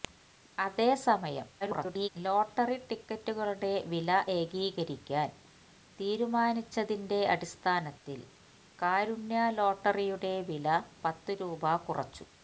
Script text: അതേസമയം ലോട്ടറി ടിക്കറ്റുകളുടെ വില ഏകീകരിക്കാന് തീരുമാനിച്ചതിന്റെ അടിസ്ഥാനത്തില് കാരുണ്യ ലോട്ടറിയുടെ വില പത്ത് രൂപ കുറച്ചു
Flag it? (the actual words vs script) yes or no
yes